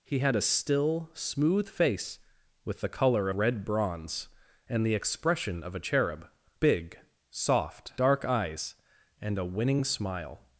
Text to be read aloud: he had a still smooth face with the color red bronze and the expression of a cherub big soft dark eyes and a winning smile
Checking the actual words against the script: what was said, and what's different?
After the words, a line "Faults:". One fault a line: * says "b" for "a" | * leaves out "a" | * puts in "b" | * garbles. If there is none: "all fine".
he had a still smooth face with the color red bronze and the expression of a cherub big soft dark eyes and a winning smile
Faults:
all fine